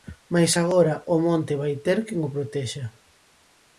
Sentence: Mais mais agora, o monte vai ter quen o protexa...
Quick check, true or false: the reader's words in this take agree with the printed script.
false